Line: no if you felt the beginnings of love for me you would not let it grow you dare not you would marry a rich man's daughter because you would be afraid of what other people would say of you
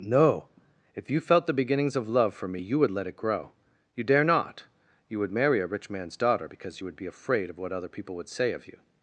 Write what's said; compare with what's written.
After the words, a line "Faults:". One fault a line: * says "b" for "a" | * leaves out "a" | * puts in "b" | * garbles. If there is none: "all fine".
no if you felt the beginnings of love for me you would let it grow you dare not you would marry a rich man's daughter because you would be afraid of what other people would say of you
Faults:
* leaves out "not"